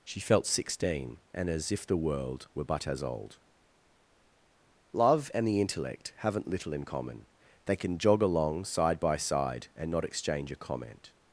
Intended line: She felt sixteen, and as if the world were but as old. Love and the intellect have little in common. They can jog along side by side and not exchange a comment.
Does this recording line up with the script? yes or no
no